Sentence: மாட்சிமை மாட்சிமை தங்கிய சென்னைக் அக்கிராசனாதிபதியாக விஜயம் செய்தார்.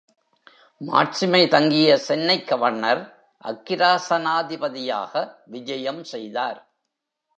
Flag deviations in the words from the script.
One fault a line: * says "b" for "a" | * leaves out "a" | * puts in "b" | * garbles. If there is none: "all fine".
* leaves out "மாட்சிமை"
* puts in "கவர்னர்"